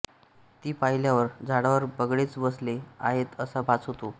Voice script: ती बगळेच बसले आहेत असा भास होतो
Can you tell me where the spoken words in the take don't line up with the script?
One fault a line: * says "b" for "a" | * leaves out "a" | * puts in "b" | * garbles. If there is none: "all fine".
* puts in "पाहिल्यावर झाडावर"